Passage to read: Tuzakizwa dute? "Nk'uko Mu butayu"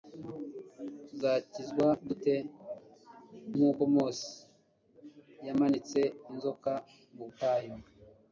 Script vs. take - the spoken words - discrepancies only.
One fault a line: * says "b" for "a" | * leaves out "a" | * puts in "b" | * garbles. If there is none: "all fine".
* puts in "Mose yamanitse inzoka"